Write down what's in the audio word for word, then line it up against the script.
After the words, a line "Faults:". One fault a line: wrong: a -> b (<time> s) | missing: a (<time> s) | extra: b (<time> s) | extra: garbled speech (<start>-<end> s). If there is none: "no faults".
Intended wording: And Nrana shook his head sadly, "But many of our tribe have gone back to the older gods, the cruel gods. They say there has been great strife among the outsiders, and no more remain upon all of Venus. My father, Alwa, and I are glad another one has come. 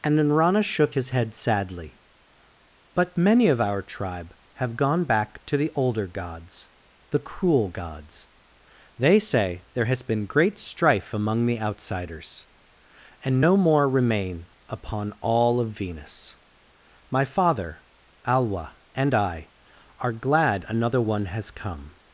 And Nrana shook his head sadly, "But many of our tribe have gone back to the older gods, the cruel gods. They say there has been great strife among the outsiders, and no more remain upon all of Venus. My father, Alwa, and I are glad another one has come.
Faults:
no faults